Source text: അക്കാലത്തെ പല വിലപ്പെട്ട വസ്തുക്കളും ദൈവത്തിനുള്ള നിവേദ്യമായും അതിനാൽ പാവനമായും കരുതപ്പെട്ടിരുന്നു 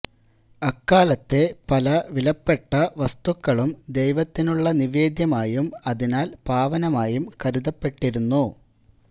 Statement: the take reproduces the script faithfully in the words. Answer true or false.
true